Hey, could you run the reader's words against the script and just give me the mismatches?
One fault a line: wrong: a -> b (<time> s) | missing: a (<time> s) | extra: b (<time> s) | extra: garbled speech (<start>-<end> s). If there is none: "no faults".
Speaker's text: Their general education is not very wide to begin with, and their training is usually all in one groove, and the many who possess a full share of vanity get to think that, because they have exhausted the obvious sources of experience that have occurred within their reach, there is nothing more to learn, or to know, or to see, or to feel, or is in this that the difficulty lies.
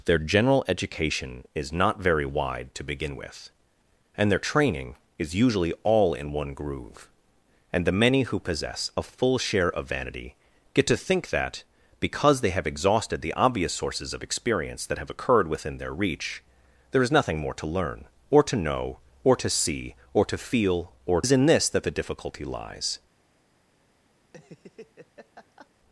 no faults